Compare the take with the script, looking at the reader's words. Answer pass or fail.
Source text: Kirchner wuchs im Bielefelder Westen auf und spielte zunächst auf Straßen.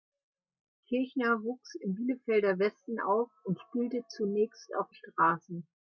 pass